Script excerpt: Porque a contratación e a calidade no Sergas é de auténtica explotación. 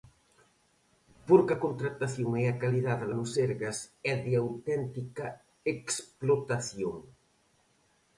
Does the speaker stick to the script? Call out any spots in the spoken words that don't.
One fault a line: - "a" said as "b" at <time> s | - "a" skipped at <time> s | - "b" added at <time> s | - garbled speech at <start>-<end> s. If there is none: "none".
none